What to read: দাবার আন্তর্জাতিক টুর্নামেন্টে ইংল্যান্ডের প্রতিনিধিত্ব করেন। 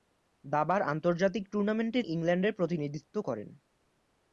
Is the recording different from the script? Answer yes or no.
no